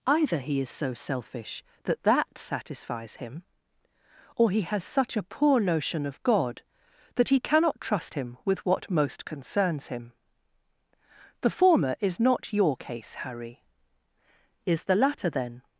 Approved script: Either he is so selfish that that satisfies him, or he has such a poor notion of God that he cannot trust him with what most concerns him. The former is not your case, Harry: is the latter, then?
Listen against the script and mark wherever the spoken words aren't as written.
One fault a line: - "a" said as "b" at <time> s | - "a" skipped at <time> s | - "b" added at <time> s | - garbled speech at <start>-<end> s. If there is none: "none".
none